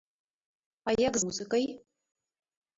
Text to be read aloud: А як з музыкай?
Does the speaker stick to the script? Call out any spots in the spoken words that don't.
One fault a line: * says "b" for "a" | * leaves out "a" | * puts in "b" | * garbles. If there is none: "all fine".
* leaves out "з"